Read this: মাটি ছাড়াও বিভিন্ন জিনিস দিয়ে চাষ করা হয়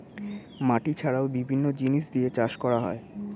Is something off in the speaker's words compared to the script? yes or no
no